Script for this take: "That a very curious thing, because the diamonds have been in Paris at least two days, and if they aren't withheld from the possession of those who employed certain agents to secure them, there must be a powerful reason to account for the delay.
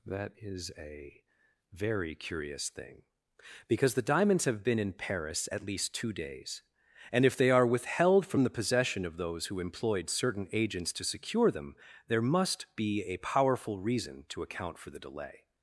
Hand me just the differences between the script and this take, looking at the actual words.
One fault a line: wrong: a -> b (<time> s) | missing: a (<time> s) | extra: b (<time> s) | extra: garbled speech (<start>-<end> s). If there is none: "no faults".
extra: is (0.4 s)
wrong: aren't -> are (7.5 s)